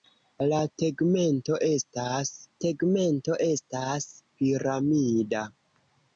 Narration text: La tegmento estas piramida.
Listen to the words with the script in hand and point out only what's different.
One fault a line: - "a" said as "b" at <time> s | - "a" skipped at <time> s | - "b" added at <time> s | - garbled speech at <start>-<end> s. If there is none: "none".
- "tegmento estas" added at 2.7 s